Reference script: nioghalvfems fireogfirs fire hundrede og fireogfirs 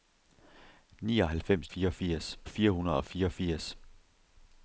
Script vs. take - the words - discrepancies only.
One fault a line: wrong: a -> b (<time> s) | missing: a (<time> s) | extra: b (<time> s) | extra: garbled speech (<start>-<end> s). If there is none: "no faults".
no faults